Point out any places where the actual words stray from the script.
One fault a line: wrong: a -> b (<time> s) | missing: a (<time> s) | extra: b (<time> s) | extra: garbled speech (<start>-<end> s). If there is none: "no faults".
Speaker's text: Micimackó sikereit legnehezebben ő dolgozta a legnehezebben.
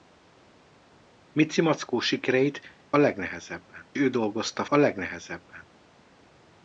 no faults